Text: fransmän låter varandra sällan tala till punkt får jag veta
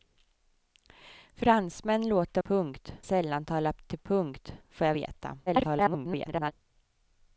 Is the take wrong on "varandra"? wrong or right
wrong